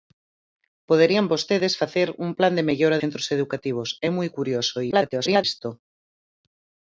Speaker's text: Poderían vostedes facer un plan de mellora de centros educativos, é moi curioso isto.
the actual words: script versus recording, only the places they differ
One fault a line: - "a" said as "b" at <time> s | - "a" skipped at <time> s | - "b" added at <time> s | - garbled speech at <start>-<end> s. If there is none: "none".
- "de" skipped at 3.0 s
- garbled speech at 4.9-5.4 s